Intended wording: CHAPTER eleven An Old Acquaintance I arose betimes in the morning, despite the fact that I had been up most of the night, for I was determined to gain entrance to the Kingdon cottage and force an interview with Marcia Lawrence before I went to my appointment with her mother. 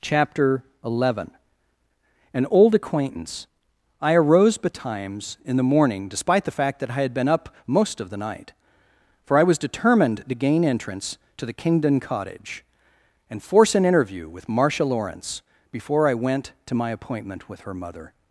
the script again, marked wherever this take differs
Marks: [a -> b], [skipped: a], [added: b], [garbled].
CHAPTER eleven An Old Acquaintance I arose betimes in the morning, despite the fact that I had been up most of the night, for I was determined to gain entrance to the Kingdon cottage and force an interview with Marcia Lawrence before I went to my appointment with her mother.